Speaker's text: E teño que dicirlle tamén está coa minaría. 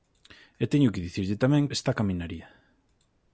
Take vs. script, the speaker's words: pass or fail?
pass